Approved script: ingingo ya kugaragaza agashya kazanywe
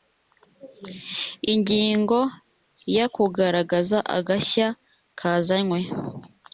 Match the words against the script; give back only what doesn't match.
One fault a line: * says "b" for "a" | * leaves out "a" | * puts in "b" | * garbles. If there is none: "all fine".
all fine